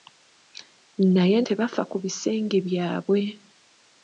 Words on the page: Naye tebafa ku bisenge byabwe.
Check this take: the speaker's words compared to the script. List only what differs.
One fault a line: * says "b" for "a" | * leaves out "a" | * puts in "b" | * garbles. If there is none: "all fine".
all fine